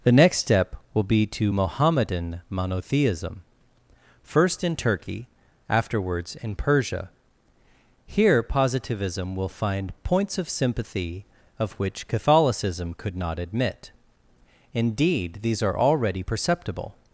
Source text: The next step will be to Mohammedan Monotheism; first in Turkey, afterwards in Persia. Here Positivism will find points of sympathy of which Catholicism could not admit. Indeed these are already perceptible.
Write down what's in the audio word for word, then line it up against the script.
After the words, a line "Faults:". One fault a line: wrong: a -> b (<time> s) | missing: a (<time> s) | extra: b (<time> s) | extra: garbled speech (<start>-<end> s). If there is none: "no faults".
The next step will be to Mohammedan Monotheism; first in Turkey, afterwards in Persia. Here Positivism will find points of sympathy of which Catholicism could not admit. Indeed these are already perceptible.
Faults:
no faults